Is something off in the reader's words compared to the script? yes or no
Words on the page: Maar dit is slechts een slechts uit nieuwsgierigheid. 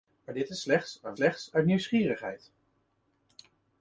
no